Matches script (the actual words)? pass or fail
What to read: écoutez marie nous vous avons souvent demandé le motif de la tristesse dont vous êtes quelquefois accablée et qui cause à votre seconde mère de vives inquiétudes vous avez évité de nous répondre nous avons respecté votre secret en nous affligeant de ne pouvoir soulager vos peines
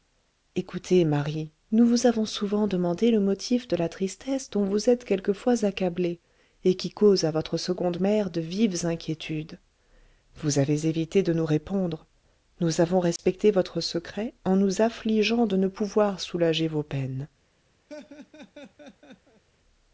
pass